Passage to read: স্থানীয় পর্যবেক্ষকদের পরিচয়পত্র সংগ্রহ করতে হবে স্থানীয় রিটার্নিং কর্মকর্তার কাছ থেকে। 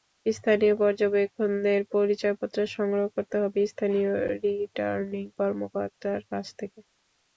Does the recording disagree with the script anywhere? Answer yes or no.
no